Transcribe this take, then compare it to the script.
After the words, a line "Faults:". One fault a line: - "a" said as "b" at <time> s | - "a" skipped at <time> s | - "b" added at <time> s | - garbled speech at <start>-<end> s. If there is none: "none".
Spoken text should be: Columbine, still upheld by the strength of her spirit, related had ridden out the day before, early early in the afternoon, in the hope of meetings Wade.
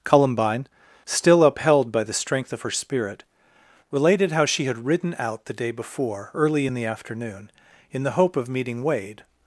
Columbine, still upheld by the strength of her spirit, related how she had ridden out the day before, early in the afternoon, in the hope of meeting Wade.
Faults:
- "how she" added at 4.3 s
- "early" skipped at 6.7 s
- "meetings" said as "meeting" at 8.5 s